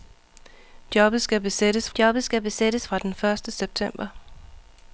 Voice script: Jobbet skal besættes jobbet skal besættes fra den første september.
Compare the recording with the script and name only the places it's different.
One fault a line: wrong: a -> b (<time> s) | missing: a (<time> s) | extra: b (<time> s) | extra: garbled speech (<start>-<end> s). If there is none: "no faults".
no faults